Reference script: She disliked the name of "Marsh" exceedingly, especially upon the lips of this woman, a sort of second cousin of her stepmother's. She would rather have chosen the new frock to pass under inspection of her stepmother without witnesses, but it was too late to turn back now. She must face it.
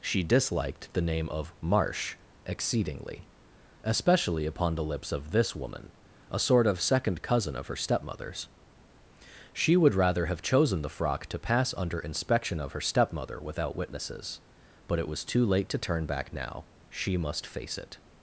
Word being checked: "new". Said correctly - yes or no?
no